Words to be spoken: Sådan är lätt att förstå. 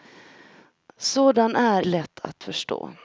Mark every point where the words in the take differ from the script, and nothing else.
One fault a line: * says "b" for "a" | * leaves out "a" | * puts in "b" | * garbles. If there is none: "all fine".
all fine